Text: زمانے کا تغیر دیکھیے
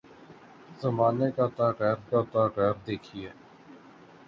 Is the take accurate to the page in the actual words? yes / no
no